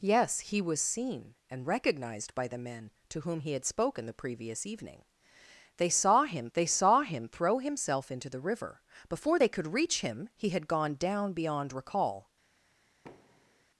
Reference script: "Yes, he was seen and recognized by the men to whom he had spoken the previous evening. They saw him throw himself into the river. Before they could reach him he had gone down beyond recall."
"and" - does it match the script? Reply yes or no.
yes